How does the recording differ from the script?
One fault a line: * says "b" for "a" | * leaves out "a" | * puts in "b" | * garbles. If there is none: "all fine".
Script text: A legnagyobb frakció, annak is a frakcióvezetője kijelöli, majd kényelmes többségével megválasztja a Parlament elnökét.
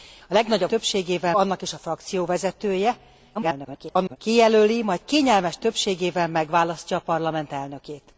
* says "többségével" for "frakció"
* garbles